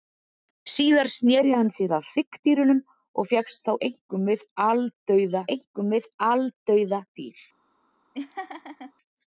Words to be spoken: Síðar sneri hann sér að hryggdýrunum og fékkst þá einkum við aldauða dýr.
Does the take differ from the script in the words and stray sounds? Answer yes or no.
yes